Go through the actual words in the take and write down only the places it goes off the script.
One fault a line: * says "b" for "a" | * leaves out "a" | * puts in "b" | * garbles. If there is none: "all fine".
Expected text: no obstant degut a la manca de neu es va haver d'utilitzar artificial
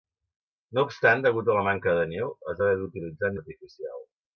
all fine